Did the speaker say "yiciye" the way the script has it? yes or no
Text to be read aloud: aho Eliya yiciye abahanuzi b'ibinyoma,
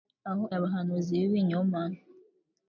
no